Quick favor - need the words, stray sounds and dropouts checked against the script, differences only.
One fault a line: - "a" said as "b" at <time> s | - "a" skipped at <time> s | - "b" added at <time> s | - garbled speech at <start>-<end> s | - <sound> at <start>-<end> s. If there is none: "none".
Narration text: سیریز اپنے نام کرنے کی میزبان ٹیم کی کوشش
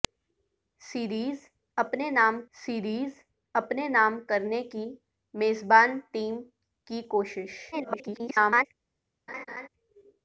- "سیریز اپنے نام" added at 2.5 s
- garbled speech at 7.7-8.7 s
- laugh at 9.3-9.7 s